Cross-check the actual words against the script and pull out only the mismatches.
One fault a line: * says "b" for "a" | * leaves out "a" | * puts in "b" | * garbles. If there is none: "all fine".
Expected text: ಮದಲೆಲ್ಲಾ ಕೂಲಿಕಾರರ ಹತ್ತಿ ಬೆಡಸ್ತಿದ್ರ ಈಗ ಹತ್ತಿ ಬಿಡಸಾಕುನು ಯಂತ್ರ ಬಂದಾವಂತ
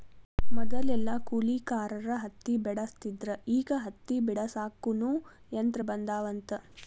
all fine